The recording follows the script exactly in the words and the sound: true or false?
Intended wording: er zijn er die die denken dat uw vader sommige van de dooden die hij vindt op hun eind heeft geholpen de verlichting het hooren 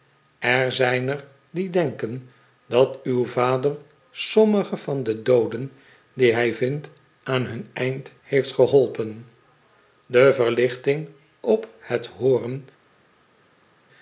false